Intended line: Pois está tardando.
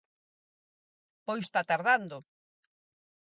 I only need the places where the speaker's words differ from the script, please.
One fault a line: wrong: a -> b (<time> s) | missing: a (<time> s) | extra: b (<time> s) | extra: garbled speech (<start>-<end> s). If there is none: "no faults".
no faults